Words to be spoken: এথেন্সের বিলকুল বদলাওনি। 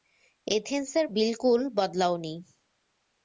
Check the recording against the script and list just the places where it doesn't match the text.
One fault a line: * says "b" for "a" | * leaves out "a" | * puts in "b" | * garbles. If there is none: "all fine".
all fine